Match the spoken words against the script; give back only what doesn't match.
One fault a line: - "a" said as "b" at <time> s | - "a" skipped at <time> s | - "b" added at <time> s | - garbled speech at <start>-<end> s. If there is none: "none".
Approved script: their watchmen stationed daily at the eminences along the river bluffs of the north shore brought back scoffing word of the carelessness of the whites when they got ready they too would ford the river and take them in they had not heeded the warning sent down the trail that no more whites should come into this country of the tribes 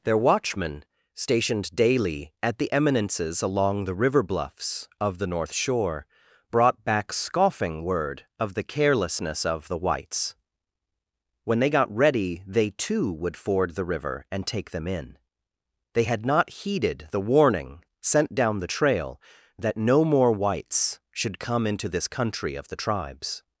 none